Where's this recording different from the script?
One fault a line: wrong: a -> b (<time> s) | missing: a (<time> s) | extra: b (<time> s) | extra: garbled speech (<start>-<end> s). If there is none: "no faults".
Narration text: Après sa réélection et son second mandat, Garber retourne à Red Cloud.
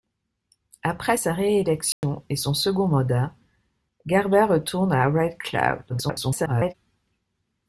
extra: garbled speech (5.9-6.7 s)